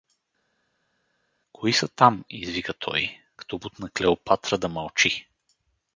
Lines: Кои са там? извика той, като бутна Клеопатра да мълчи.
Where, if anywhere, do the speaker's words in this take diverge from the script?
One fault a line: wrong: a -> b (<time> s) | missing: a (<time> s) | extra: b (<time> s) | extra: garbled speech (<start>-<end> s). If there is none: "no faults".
no faults